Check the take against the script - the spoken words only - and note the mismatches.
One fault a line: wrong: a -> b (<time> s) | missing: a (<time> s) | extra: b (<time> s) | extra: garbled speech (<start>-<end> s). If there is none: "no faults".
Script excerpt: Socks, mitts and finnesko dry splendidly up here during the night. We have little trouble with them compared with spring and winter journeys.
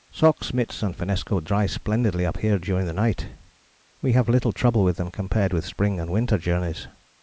no faults